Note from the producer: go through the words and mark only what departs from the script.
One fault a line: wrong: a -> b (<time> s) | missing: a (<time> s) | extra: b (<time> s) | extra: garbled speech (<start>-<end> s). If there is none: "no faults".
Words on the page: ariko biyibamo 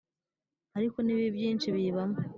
extra: n'ibibi byinshi (1.0 s)